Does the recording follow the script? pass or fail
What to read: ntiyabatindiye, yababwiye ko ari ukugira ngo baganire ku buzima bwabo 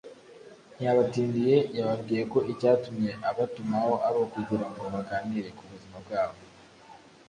fail